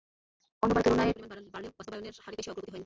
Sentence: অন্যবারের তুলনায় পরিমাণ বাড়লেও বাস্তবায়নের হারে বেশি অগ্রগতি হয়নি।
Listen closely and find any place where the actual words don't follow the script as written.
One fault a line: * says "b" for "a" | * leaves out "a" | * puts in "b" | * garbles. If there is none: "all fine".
all fine